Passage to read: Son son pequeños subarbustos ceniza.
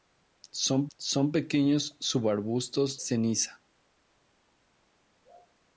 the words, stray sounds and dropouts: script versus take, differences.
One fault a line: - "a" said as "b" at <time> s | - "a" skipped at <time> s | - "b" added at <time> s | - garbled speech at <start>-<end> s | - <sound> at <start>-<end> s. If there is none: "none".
none